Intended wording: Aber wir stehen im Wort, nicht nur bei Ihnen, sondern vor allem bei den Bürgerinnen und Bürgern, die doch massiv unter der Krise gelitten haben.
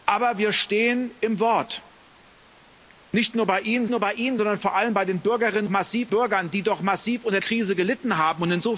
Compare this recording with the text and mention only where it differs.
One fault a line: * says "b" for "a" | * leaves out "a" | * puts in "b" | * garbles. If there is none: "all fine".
* puts in "nur bei Ihnen"
* says "massiv" for "und"
* leaves out "der"